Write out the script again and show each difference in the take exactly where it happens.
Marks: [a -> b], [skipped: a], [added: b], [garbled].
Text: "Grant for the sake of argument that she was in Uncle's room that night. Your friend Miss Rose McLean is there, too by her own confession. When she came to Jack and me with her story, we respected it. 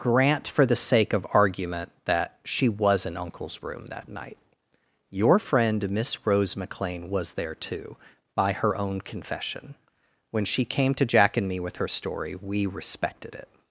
"Grant for the sake of argument that she was in Uncle's room that night. Your friend Miss Rose McLean [is -> was] there, too by her own confession. When she came to Jack and me with her story, we respected it.